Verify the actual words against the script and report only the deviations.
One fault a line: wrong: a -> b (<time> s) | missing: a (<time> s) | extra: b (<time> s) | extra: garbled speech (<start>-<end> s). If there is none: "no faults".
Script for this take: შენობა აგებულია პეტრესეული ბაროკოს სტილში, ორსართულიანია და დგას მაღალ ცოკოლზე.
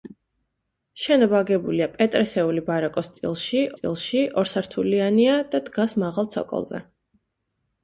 extra: სტილში (3.7 s)